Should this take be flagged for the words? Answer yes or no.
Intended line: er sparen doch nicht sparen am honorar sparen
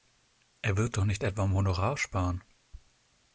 yes